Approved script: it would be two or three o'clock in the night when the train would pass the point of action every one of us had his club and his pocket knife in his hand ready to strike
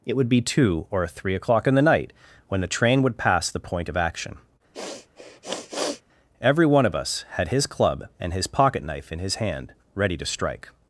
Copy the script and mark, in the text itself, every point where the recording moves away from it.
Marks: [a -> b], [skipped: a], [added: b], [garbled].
it would be two or three o'clock in the night when the train would pass the point of action every one of us had his club and his pocket knife in his hand ready to strike